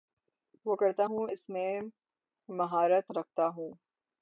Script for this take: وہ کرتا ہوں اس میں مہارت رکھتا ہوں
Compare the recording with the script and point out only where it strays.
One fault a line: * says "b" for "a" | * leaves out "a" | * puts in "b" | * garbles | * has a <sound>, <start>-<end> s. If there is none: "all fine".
all fine